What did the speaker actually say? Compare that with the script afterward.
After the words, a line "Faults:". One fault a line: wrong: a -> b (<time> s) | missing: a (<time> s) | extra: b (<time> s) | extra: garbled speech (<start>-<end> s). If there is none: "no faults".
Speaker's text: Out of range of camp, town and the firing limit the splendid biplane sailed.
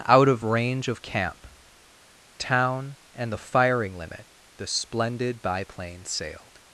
Out of range of camp, town and the firing limit the splendid biplane sailed.
Faults:
no faults